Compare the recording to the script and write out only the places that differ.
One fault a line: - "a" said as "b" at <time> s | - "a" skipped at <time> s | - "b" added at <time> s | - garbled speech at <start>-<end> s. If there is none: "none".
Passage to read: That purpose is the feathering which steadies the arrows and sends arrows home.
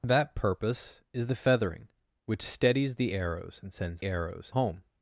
none